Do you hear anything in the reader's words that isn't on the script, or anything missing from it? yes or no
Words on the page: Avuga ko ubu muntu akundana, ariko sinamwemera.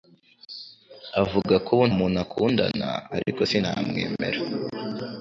no